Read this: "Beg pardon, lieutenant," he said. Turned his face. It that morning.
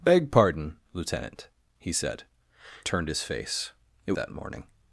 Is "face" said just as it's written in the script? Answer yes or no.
yes